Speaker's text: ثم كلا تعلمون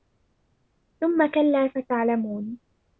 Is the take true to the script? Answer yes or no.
yes